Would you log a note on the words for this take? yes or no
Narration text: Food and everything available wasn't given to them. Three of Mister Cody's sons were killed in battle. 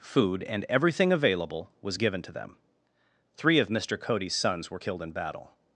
yes